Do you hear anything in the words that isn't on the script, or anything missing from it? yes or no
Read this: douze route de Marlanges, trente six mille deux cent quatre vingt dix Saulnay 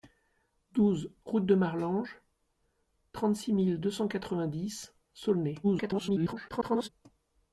yes